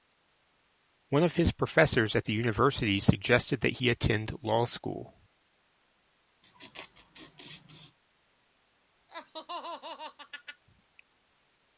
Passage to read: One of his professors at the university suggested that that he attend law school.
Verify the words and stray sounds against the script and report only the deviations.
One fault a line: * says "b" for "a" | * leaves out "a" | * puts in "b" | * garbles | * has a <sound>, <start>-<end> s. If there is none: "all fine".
* leaves out "that"
* has a laugh, 6.4-8.0 s
* has a laugh, 9.1-10.6 s